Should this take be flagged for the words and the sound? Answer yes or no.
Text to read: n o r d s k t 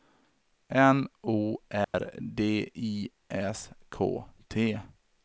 yes